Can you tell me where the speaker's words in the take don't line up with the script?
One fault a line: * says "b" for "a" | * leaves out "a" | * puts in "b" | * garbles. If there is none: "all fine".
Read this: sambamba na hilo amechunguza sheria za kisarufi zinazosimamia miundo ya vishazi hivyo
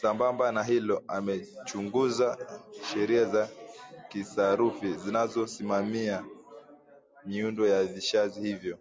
all fine